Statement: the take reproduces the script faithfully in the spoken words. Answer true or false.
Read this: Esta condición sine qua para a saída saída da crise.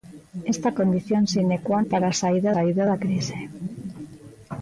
true